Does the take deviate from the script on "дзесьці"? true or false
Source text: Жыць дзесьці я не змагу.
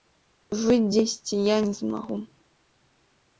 false